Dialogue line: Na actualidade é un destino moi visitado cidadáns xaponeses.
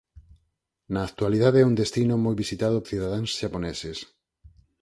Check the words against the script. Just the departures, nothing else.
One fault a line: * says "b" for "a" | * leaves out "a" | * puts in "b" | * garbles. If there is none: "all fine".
all fine